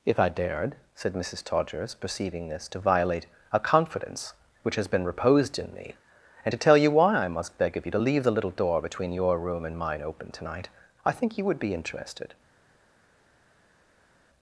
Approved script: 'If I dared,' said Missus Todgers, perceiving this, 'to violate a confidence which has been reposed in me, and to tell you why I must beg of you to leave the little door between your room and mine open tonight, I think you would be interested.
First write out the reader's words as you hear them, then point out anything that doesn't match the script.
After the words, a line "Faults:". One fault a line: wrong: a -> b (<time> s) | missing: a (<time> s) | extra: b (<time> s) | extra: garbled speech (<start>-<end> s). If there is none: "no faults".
'If I dared,' said Missus Todgers, perceiving this, 'to violate a confidence which has been reposed in me, and to tell you why I must beg of you to leave the little door between your room and mine open tonight, I think you would be interested.
Faults:
no faults